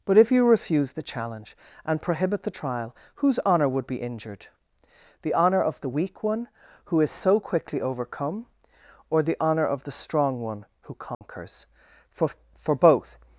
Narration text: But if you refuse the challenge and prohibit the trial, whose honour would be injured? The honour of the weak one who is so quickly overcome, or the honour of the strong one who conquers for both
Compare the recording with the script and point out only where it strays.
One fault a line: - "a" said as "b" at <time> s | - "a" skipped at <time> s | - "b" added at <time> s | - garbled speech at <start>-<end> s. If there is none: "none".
- "for" added at 12.5 s